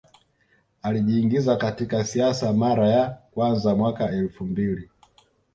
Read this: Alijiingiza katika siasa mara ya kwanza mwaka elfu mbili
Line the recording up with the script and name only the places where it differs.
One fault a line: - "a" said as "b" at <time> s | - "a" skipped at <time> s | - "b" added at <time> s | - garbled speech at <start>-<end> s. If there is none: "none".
none